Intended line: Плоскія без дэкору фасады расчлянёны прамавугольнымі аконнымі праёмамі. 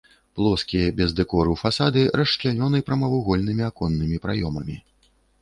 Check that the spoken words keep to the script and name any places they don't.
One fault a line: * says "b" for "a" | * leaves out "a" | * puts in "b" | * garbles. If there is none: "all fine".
all fine